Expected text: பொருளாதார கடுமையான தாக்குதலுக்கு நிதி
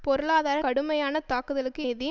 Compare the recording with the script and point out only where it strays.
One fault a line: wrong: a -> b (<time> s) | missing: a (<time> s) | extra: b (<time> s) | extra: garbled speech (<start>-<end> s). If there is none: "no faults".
no faults